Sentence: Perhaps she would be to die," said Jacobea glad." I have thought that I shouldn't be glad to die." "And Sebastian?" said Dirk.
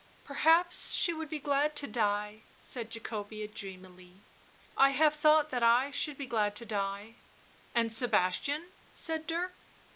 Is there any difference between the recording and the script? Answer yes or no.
yes